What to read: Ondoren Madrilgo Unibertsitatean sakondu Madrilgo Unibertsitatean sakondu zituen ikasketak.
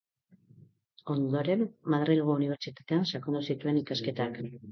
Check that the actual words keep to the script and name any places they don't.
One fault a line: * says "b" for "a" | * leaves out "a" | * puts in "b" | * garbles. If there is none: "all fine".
* leaves out "Madrilgo Unibertsitatean sakondu"